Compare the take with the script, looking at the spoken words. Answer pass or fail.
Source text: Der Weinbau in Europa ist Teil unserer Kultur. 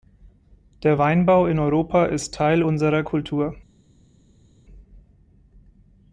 pass